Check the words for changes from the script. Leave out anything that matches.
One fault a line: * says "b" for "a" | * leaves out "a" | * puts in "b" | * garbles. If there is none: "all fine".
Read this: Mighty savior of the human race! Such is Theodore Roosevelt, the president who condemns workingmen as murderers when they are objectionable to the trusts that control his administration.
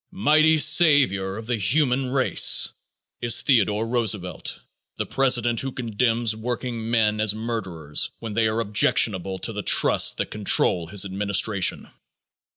* leaves out "Such"